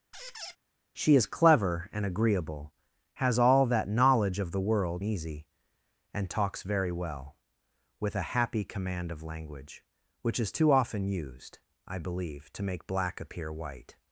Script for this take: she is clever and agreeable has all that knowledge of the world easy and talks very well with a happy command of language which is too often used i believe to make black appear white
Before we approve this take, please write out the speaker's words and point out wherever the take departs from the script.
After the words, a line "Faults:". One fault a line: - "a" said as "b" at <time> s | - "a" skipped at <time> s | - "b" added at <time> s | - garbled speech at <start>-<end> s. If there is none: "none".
she is clever and agreeable has all that knowledge of the world easy and talks very well with a happy command of language which is too often used i believe to make black appear white
Faults:
none